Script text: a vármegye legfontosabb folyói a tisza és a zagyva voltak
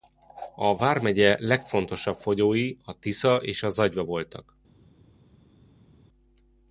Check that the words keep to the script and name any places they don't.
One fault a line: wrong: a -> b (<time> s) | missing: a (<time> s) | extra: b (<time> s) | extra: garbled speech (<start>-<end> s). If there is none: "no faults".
no faults